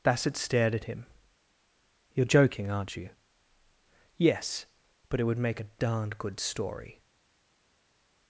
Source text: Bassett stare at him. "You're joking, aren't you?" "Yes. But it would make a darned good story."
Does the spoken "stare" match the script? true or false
false